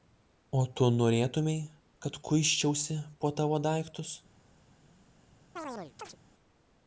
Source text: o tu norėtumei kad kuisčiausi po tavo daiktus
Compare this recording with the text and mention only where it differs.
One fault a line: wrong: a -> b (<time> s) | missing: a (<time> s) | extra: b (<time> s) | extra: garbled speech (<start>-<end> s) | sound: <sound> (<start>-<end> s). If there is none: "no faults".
sound: chirp (5.6-6.2 s)